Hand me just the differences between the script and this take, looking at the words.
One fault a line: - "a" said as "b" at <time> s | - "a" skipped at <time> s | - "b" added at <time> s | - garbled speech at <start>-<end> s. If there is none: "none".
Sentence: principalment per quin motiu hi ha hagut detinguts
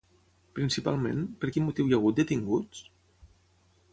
none